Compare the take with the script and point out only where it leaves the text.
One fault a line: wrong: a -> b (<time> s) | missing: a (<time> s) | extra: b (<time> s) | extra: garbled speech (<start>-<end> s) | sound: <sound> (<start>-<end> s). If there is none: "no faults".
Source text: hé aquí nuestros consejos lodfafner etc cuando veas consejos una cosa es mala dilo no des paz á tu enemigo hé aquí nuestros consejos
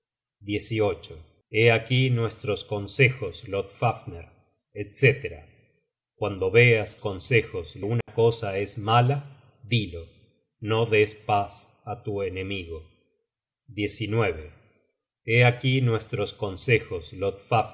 sound: dropout (8.0-8.1 s)